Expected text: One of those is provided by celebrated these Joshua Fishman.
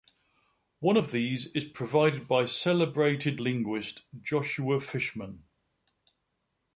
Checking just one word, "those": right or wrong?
wrong